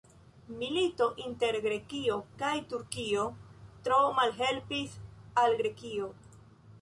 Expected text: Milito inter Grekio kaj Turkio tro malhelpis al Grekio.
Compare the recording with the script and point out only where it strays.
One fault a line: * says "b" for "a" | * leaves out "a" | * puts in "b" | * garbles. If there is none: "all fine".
all fine